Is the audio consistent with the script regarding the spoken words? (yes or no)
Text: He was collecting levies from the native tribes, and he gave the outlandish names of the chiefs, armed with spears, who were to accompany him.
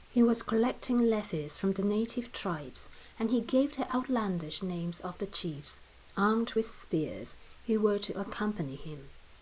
yes